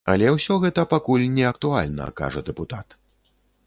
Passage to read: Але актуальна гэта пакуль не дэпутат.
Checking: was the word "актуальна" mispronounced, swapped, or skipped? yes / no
yes